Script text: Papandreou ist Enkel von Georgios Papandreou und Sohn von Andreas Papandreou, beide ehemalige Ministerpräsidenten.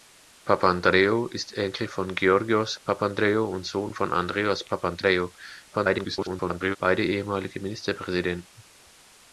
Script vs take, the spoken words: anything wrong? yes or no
yes